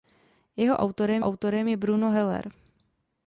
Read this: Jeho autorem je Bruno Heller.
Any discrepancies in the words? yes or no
yes